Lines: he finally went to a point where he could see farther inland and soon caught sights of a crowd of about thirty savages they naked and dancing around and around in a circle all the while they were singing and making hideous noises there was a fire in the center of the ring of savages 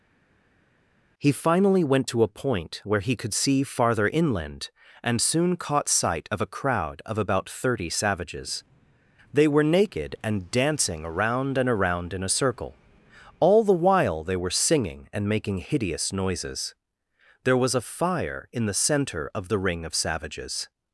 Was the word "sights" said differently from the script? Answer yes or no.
yes